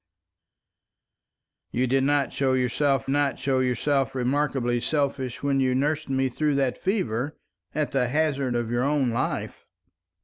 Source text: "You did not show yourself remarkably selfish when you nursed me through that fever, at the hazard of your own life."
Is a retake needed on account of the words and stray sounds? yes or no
yes